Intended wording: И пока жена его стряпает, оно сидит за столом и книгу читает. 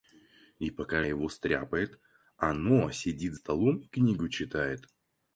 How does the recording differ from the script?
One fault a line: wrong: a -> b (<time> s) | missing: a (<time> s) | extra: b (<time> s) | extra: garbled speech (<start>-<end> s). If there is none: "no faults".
missing: жена (1.0 s)
missing: за (3.3 s)